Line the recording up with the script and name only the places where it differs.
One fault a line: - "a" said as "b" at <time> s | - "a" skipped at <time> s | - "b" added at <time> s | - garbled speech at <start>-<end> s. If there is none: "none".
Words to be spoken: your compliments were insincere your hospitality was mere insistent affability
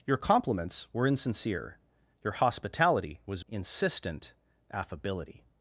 - "mere" skipped at 3.5 s